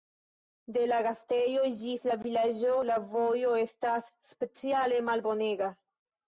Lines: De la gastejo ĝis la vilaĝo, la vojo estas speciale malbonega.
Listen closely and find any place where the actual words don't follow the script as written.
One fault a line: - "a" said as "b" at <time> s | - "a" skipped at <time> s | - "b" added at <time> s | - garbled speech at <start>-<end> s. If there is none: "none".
none